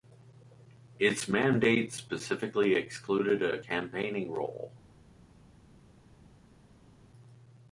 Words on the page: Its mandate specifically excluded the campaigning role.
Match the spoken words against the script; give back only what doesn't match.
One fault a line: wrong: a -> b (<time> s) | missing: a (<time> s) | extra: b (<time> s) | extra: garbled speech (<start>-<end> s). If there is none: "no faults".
wrong: the -> a (3.4 s)